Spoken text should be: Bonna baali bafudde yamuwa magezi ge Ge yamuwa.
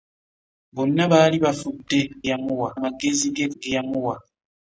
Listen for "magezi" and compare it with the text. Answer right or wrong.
right